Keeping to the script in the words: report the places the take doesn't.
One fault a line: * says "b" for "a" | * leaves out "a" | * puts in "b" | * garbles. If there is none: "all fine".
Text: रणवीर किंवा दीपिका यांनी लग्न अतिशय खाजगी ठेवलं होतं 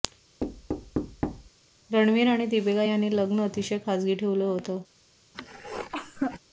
* says "आणि" for "किंवा"